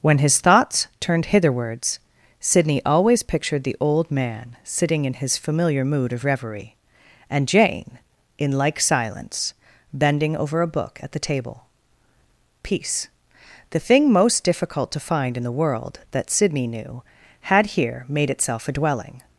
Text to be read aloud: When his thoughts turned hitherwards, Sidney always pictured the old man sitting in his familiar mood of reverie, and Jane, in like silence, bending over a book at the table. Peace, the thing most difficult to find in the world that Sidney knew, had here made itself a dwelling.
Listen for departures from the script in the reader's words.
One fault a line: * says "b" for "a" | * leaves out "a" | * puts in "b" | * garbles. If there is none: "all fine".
all fine